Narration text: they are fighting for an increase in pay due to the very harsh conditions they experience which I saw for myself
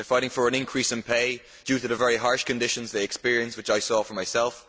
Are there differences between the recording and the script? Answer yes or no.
no